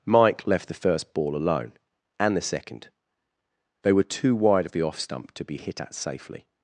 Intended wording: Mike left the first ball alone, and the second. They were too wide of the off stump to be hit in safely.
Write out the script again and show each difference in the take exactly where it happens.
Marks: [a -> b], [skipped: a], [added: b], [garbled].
Mike left the first ball alone, and the second. They were too wide of the off stump to be hit [in -> at] safely.